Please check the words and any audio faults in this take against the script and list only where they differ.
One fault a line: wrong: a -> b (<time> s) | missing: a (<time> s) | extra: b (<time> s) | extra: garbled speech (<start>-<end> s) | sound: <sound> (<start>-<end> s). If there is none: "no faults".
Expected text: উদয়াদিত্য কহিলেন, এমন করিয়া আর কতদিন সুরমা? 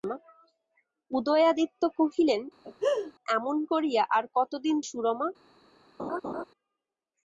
sound: laugh (2.6-3.1 s)
sound: laugh (6.0-6.4 s)